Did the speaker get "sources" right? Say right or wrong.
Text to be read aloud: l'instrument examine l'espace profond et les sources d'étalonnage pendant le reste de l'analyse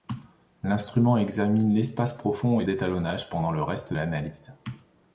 wrong